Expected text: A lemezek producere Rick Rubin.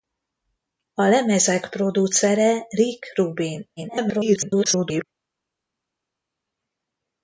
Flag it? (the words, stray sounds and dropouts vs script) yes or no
yes